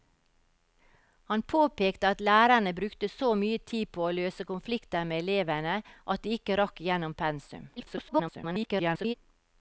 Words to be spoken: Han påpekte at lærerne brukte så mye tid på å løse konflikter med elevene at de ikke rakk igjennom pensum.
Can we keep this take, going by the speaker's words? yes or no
no